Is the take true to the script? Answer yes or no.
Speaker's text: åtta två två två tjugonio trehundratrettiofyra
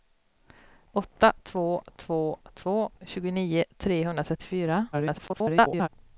no